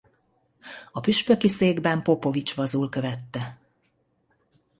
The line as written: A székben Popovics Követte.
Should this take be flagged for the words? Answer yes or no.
yes